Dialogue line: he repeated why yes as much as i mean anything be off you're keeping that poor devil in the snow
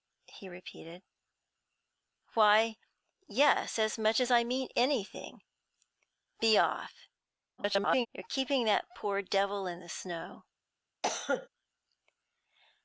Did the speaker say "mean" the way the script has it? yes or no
yes